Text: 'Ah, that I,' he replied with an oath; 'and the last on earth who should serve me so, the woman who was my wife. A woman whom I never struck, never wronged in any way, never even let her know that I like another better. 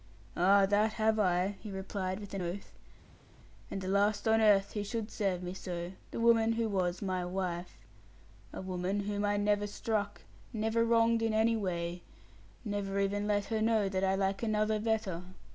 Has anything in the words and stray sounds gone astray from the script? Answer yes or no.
yes